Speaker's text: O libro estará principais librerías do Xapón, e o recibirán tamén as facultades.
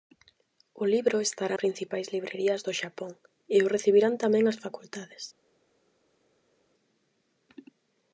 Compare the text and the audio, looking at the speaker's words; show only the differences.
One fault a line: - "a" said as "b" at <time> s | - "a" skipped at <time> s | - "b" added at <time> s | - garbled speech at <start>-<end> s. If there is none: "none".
none